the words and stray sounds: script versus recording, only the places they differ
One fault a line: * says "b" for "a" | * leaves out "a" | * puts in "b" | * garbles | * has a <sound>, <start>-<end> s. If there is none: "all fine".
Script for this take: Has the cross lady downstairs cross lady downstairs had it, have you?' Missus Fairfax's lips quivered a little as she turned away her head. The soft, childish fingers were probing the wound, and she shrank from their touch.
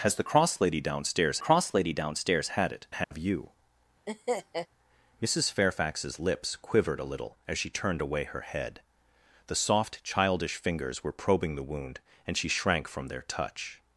* has a dropout, 3.0-3.1 s
* has a laugh, 4.1-4.7 s